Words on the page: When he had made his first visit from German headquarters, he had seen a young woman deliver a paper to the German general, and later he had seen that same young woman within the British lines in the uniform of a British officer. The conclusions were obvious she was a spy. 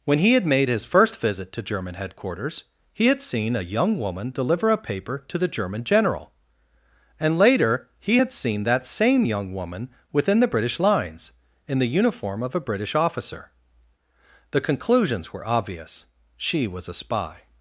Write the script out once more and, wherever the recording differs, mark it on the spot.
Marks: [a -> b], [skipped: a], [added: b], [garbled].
When he had made his first visit [from -> to] German headquarters, he had seen a young woman deliver a paper to the German general, and later he had seen that same young woman within the British lines in the uniform of a British officer. The conclusions were obvious she was a spy.